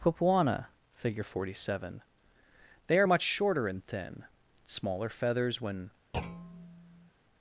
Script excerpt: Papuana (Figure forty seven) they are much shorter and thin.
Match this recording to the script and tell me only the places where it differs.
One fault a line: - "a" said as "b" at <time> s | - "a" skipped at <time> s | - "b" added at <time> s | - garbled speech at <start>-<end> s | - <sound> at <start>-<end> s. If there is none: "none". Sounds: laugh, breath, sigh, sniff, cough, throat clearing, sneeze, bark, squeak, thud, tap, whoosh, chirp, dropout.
- "Smaller feathers when" added at 4.6 s
- thud at 6.1-7.1 s